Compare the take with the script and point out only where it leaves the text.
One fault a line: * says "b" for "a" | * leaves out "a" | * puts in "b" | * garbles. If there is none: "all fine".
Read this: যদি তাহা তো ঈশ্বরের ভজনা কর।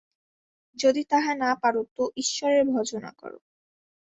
* puts in "না পার"